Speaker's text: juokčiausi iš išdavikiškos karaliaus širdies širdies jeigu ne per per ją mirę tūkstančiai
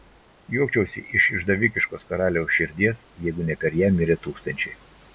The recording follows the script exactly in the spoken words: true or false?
false